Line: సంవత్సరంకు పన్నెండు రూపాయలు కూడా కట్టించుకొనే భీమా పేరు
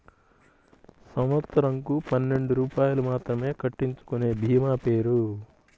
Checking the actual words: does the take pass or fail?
fail